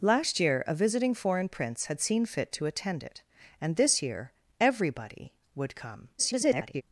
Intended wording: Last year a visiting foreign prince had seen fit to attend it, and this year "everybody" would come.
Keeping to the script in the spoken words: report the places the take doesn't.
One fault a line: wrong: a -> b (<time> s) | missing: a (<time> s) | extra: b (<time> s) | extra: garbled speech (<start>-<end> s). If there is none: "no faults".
extra: garbled speech (6.2-6.8 s)